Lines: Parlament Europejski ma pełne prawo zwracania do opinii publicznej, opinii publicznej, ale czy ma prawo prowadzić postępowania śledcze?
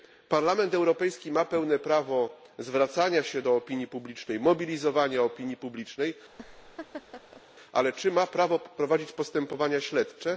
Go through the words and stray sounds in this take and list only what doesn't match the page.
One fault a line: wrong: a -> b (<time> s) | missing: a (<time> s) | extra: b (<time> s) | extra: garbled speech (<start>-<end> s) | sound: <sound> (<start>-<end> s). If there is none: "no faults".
extra: się (3.2 s)
extra: mobilizowania (4.4 s)
sound: laugh (6.3-7.4 s)